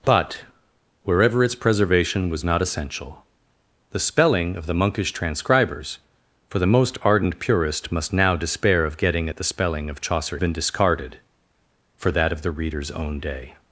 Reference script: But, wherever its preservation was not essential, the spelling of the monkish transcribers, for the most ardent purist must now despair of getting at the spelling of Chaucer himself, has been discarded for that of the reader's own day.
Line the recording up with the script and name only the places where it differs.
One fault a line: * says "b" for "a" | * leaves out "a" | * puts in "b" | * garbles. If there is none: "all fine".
* leaves out "himself has"